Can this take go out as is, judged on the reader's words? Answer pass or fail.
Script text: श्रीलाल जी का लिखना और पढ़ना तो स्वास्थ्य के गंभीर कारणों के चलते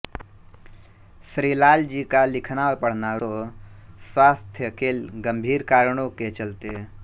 pass